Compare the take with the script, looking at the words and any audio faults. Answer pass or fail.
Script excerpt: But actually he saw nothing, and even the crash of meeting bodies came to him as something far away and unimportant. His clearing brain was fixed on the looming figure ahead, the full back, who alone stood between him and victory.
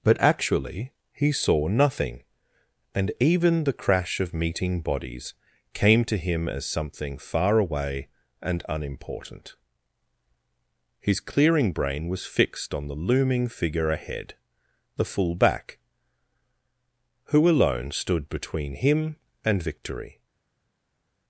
pass